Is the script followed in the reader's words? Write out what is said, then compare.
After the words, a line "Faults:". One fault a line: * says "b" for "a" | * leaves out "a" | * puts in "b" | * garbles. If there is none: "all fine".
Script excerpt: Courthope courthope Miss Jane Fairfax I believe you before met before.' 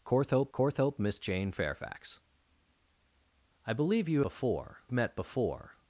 Courthope courthope Miss Jane Fairfax I believe you before met before.'
Faults:
all fine